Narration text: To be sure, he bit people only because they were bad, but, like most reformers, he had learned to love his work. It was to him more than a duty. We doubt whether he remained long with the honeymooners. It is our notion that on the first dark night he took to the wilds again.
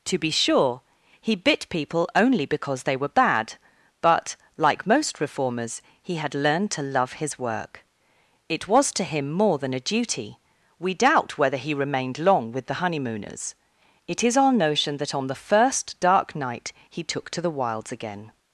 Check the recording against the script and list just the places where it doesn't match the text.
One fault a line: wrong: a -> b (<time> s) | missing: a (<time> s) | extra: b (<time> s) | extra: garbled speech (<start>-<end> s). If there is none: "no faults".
no faults